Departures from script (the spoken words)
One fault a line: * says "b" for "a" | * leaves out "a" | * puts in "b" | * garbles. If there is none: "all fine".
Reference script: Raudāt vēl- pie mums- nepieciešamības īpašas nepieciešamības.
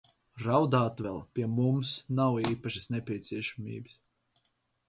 * says "nav" for "nepieciešamības"